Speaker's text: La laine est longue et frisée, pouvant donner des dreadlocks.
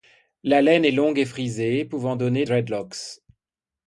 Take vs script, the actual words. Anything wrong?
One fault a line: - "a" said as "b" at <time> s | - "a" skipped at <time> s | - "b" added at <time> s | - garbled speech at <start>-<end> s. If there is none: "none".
- "des" skipped at 2.5 s